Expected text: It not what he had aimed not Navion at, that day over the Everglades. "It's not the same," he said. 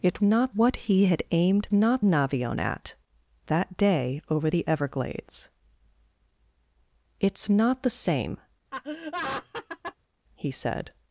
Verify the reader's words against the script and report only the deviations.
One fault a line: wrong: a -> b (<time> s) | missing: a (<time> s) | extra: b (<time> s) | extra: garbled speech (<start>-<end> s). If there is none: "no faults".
no faults